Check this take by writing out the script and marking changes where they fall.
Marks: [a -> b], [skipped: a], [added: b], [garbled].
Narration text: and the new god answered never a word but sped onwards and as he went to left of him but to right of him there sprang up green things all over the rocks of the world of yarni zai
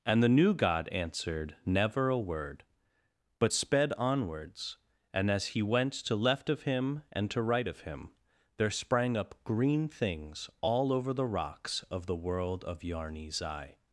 and the new god answered never a word but sped onwards and as he went to left of him [but -> and] to right of him there sprang up green things all over the rocks of the world of yarni zai